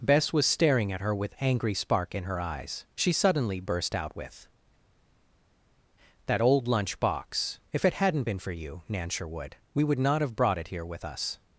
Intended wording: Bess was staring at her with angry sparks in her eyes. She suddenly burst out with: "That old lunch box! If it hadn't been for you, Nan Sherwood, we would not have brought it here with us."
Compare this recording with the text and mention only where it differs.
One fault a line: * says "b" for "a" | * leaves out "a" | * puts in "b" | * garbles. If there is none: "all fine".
* says "spark" for "sparks"